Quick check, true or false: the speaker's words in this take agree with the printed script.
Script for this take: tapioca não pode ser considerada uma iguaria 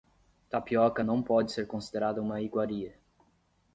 true